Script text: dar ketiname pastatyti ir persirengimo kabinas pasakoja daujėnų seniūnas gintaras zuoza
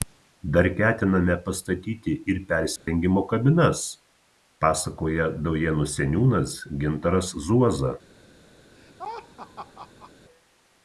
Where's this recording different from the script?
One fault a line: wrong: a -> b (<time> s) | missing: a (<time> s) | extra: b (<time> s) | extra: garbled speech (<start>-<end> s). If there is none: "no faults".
no faults